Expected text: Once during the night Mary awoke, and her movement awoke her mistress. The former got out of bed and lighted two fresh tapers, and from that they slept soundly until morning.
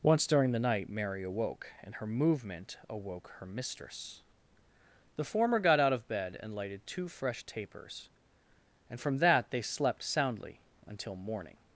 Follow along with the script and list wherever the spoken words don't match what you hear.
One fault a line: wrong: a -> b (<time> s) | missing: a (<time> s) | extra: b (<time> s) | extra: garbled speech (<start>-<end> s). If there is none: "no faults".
no faults